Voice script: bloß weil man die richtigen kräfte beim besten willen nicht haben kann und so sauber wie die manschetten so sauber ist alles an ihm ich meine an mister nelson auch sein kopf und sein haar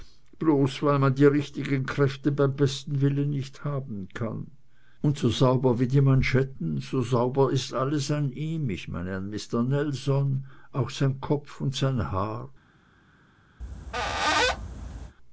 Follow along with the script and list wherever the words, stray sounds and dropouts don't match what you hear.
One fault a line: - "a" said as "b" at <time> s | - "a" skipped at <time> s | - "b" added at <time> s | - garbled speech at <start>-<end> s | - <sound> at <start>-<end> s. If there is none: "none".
- squeak at 13.6-15.2 s